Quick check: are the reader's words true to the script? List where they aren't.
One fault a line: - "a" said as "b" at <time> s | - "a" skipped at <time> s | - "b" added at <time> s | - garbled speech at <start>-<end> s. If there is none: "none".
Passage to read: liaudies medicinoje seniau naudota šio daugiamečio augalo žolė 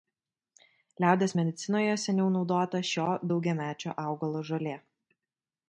none